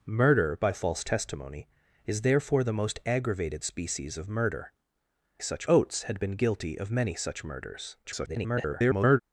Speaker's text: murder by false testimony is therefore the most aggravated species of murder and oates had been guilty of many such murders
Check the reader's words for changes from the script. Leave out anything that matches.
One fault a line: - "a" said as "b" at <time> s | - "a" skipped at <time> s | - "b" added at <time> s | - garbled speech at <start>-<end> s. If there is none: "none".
- "and" said as "such" at 5.4 s
- garbled speech at 8.0-9.2 s